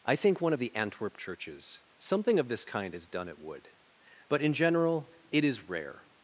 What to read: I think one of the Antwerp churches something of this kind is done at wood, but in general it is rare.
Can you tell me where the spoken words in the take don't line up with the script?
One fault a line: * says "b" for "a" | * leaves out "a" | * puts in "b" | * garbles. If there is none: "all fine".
all fine